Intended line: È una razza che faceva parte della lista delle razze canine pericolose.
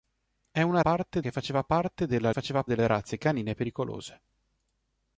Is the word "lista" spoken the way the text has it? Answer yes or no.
no